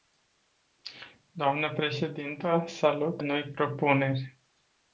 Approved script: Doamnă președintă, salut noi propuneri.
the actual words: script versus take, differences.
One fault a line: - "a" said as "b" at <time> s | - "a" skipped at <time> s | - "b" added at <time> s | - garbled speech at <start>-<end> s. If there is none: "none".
none